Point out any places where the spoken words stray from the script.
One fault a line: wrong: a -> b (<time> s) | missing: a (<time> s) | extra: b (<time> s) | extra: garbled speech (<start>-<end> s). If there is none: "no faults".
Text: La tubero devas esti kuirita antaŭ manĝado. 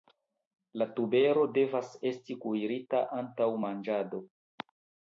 no faults